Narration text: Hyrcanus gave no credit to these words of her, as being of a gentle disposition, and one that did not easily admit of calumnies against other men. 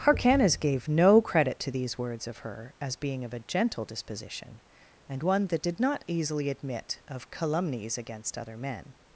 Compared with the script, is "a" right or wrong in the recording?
right